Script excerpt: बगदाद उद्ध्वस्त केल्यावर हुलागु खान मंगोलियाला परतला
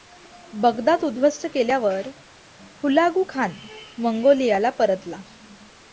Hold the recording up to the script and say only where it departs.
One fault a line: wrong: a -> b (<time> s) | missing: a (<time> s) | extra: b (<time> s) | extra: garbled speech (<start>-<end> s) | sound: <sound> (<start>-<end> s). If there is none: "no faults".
no faults